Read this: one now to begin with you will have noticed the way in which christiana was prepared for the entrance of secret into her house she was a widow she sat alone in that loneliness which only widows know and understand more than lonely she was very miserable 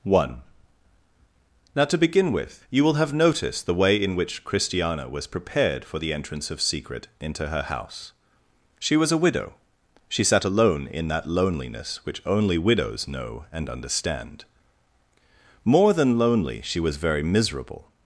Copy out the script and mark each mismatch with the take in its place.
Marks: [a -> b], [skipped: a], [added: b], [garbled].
one now to begin with you will have noticed the way in which christiana was prepared for the entrance of secret into her house she was a widow she sat alone in that loneliness which only widows know and understand more than lonely she was very miserable